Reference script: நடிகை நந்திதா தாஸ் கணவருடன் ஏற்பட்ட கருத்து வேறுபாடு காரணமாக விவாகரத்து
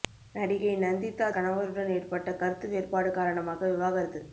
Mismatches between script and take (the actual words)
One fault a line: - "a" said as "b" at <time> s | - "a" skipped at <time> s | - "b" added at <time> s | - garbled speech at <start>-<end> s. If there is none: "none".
- "தாஸ்" skipped at 1.3 s